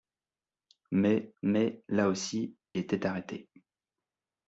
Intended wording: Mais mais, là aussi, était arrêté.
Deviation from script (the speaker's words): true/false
false